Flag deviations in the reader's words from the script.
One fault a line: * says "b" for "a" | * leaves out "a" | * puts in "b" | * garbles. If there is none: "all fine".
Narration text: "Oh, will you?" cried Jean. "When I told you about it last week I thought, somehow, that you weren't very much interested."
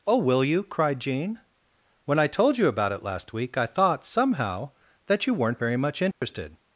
all fine